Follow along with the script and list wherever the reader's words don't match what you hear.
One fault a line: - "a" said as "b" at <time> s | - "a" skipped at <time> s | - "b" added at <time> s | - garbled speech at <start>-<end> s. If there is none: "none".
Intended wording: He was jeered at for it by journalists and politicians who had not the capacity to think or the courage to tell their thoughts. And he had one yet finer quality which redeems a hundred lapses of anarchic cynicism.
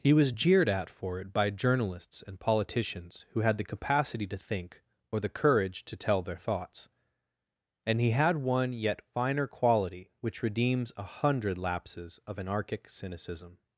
- "not" skipped at 3.6 s